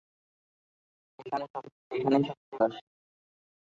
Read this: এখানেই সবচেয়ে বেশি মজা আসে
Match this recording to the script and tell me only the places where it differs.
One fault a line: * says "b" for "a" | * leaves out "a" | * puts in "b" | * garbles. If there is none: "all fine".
* leaves out "বেশি মজা"